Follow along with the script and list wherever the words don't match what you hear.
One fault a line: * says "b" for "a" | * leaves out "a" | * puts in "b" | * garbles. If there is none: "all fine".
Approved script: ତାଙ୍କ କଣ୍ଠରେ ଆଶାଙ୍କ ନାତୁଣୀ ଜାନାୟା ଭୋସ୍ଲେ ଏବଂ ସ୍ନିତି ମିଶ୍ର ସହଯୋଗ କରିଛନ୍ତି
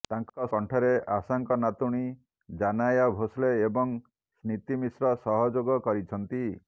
all fine